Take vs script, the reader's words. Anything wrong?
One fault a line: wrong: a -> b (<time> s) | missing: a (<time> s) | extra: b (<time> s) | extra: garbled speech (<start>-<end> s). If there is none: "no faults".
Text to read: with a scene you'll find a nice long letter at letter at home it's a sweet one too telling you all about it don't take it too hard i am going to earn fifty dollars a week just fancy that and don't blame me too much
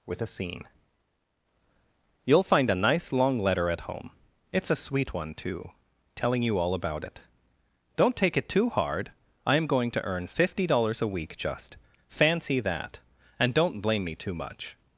missing: letter at (3.8 s)